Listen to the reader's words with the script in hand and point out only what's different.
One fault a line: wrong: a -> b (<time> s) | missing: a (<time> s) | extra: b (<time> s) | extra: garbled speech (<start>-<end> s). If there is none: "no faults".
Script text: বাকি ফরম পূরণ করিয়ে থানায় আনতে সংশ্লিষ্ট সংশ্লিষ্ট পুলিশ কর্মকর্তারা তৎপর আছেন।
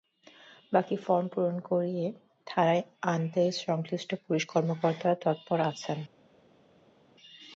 missing: সংশ্লিষ্ট (4.1 s)